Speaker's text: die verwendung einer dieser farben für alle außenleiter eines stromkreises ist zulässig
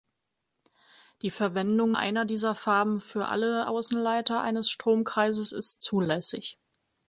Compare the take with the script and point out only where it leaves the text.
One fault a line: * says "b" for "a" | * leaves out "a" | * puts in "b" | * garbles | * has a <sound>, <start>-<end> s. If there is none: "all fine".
all fine